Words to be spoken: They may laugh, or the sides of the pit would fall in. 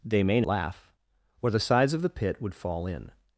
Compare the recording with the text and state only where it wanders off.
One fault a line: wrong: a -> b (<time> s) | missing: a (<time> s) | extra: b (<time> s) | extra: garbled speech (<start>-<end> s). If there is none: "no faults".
no faults